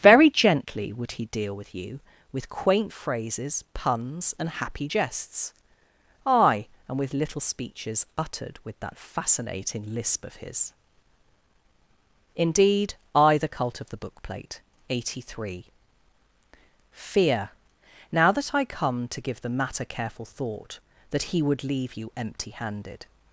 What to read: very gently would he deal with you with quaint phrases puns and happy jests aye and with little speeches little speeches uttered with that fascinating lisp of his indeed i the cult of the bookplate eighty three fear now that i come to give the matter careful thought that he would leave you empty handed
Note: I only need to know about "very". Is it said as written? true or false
true